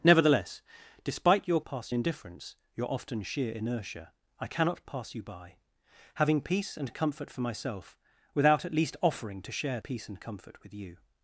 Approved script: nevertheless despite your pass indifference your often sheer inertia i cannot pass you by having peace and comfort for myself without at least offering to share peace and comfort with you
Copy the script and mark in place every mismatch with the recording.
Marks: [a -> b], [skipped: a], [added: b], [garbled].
nevertheless despite your pass indifference your often sheer inertia i cannot pass you by having peace and comfort for myself without at least offering to share peace and comfort with you